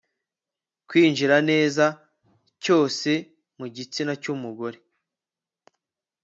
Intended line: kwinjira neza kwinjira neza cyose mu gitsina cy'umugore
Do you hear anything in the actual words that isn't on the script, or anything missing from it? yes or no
yes